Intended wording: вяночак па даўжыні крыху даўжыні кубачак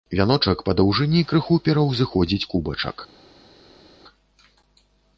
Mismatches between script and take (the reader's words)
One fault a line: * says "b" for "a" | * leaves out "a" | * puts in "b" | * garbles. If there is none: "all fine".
* says "пераўзыходзіць" for "даўжыні"